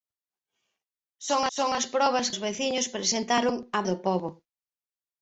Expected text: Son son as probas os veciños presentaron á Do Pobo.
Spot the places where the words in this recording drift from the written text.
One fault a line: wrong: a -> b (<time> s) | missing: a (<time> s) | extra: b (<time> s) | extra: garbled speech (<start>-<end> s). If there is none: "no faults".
no faults